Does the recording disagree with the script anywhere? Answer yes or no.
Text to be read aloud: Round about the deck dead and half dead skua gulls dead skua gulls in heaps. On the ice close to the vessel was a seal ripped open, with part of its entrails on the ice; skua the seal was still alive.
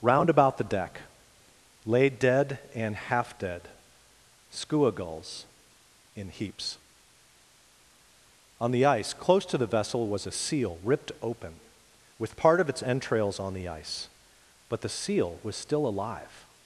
yes